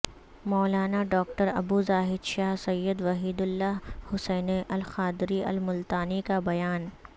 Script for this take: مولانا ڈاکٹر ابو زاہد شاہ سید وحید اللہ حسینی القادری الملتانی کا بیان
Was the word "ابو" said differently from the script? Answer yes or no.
no